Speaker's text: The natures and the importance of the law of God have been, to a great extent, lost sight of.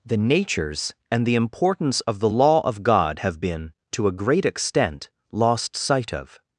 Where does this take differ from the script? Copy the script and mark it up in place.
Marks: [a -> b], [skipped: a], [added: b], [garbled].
The natures and the importance of the law of God have been, to a great extent, lost sight of.